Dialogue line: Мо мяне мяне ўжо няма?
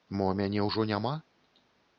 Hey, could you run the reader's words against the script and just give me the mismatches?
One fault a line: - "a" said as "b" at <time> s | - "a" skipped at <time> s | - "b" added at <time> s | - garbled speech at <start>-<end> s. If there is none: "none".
- "мяне" skipped at 0.6 s